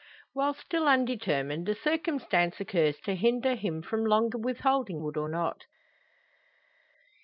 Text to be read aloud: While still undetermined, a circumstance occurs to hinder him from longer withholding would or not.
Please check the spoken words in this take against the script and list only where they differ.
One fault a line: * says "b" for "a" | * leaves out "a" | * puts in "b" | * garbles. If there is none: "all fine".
all fine